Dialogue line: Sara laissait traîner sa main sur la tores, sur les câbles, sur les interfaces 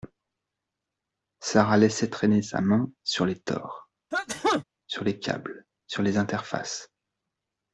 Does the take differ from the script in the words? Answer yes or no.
yes